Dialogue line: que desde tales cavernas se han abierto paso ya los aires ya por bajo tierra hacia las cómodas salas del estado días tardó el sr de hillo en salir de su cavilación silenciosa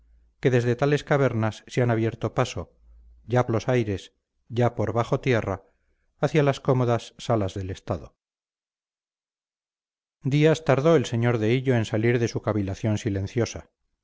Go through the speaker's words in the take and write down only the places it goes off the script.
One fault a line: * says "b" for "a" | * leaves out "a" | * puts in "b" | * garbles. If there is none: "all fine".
all fine